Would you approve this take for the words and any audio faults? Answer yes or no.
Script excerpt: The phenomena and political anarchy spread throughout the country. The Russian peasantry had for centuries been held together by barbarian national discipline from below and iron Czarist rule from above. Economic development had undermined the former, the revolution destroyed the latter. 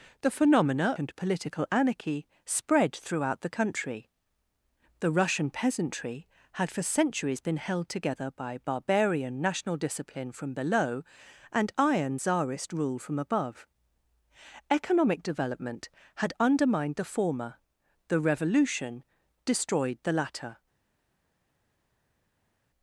yes